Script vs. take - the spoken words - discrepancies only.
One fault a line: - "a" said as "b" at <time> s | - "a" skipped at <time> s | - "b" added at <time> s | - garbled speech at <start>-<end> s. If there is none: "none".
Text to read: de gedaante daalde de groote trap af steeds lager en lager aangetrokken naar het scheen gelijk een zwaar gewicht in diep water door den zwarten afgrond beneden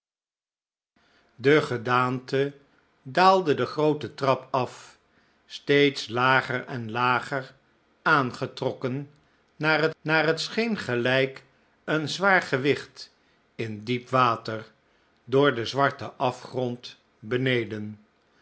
- "naar het" added at 10.0 s